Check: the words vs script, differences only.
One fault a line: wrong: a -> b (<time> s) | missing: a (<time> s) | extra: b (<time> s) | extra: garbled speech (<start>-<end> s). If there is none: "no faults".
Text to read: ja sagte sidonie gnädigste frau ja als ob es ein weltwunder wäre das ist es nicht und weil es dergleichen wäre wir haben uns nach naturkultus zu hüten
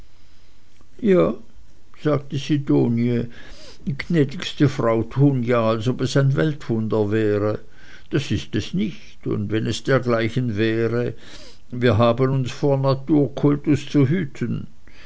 extra: tun (5.2 s)
wrong: weil -> wenn (9.5 s)
wrong: nach -> vor (12.5 s)